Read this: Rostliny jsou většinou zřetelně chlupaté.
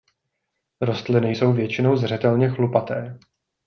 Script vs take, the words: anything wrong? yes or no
no